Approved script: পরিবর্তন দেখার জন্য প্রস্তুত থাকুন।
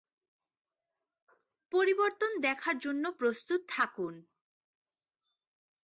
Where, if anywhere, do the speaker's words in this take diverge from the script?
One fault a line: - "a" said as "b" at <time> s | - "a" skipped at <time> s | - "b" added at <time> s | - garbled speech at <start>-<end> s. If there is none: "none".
none